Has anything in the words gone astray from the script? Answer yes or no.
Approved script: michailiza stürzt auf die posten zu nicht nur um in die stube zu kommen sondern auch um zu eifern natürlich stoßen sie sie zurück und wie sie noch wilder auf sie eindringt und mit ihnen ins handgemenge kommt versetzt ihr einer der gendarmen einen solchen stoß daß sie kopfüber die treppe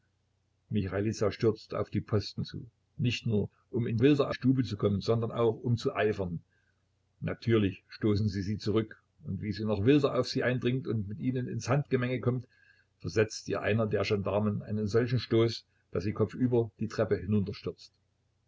yes